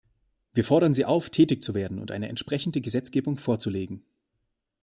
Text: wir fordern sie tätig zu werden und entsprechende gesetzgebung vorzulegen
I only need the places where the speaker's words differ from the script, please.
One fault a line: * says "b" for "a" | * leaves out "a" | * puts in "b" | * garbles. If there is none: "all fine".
* puts in "auf"
* puts in "eine"